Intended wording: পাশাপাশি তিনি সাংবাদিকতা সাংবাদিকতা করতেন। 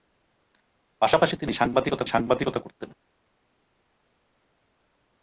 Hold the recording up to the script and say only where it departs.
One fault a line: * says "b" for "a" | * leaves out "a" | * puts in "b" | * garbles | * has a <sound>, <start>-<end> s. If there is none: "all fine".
all fine